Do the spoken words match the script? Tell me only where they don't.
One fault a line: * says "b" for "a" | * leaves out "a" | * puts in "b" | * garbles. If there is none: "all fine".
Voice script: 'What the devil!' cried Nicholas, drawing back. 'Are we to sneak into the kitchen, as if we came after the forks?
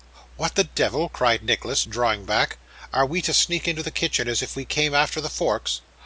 all fine